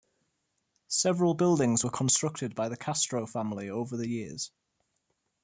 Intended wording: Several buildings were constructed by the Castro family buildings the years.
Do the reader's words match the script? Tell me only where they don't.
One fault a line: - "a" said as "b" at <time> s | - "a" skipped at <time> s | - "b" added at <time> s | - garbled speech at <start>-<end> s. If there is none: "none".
- "buildings" said as "over" at 3.7 s